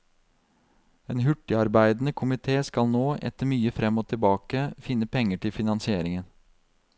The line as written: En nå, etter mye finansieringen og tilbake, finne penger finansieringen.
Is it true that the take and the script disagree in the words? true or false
true